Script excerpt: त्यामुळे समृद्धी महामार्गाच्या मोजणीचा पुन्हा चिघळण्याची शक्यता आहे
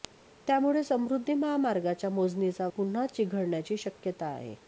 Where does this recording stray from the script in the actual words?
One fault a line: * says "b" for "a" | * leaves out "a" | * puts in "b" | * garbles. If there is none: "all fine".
all fine